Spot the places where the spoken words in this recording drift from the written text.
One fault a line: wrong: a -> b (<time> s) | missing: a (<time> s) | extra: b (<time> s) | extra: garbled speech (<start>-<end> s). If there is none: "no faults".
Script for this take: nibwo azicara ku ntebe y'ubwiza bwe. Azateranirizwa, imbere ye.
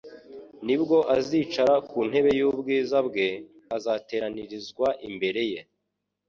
no faults